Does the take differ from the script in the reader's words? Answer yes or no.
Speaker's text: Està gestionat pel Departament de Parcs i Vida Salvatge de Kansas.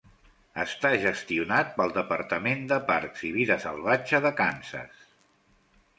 no